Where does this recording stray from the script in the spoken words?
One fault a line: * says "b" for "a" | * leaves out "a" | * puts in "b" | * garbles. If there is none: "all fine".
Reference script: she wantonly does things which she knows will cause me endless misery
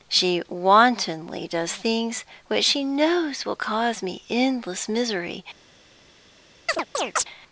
all fine